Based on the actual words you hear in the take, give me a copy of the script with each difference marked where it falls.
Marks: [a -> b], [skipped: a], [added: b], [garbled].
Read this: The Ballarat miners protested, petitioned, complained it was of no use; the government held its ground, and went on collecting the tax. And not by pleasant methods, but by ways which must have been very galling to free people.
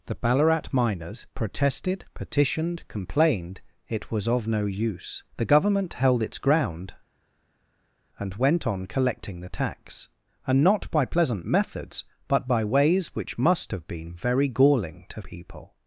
The Ballarat miners protested, petitioned, complained it was of no use; the government held its ground, and went on collecting the tax. And not by pleasant methods, but by ways which must have been very galling to [skipped: free] people.